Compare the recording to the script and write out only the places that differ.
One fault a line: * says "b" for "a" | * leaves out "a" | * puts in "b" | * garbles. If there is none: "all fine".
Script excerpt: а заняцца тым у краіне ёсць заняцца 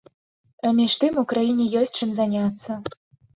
* says "між" for "заняцца"
* puts in "чым"